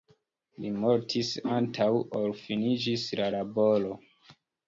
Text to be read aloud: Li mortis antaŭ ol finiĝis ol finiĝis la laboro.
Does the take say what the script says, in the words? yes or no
no